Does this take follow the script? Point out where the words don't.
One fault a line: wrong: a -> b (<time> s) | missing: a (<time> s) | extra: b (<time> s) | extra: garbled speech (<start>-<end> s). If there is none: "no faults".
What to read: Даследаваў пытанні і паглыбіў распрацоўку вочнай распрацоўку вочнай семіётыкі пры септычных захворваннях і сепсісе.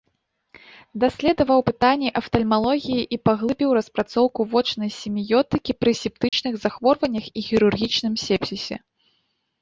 extra: афтальмалогіі (2.2 s)
missing: распрацоўку вочнай (4.9 s)
extra: хірургічным (7.5 s)